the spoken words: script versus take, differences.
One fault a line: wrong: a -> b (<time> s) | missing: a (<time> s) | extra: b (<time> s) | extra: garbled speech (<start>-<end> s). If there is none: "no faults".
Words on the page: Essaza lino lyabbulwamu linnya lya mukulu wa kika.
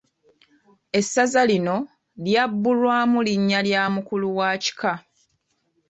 no faults